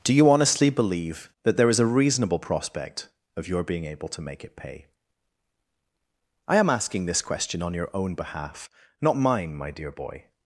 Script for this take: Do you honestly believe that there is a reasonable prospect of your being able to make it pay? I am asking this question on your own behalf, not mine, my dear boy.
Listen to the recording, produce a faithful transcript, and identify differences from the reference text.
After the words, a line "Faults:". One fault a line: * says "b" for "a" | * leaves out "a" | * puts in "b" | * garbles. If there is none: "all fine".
Do you honestly believe that there is a reasonable prospect of your being able to make it pay? I am asking this question on your own behalf, not mine, my dear boy.
Faults:
all fine